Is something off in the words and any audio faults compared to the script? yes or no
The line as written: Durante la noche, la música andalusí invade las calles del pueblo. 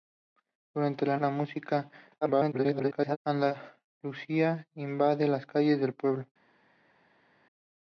yes